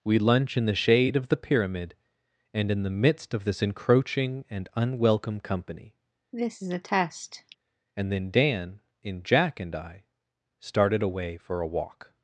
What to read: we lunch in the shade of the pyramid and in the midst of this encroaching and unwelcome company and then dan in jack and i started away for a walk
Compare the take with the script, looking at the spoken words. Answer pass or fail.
pass